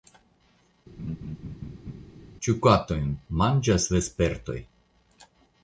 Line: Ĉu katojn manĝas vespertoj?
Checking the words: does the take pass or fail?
pass